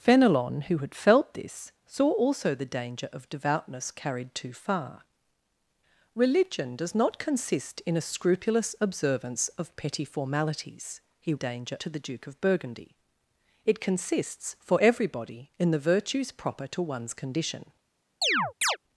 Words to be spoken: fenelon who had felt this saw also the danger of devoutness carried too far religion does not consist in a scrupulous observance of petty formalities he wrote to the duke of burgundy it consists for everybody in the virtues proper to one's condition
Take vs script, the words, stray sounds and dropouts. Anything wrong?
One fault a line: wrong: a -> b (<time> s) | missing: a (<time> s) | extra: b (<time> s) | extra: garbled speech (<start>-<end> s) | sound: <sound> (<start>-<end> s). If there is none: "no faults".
wrong: wrote -> danger (11.3 s)
sound: chirp (18.2-18.8 s)